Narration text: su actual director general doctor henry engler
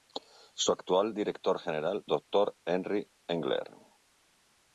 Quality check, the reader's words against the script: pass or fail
pass